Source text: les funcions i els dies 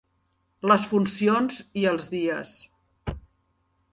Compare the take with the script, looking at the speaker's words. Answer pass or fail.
pass